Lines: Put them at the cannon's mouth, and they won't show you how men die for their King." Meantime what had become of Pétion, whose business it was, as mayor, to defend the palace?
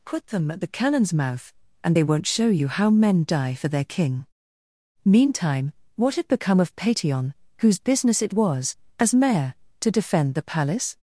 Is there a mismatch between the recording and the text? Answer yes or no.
no